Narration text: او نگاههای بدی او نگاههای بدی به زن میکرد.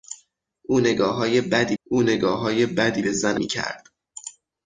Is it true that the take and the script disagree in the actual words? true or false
false